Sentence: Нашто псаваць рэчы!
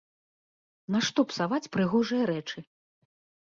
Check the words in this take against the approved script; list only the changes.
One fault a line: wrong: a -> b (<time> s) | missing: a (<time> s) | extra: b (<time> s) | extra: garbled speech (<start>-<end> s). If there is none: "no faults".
extra: прыгожыя (1.8 s)